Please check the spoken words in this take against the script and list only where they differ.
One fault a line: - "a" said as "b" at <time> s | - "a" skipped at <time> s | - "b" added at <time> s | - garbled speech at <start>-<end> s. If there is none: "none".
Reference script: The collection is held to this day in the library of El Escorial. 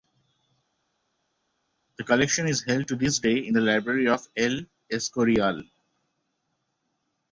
none